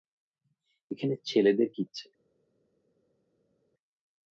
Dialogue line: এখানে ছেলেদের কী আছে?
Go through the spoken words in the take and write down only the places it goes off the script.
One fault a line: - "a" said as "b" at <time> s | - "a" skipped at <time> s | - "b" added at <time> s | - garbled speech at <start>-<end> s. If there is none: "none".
none